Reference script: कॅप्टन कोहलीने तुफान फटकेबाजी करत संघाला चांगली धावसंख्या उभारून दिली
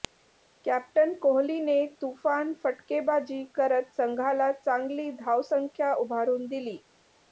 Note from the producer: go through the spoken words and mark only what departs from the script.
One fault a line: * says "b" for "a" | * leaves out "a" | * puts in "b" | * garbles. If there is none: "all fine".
all fine